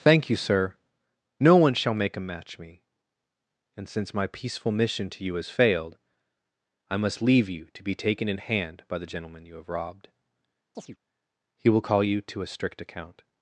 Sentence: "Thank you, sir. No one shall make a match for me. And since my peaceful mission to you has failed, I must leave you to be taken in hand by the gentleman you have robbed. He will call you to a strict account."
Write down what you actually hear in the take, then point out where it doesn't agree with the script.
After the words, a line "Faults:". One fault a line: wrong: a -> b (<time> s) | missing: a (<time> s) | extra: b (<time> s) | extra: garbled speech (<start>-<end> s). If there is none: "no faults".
"Thank you, sir. No one shall make a match me. And since my peaceful mission to you has failed, I must leave you to be taken in hand by the gentleman you have robbed. He will call you to a strict account."
Faults:
missing: for (2.6 s)